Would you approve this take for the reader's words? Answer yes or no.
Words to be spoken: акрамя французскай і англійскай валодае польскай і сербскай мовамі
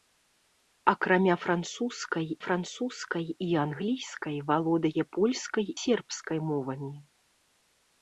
no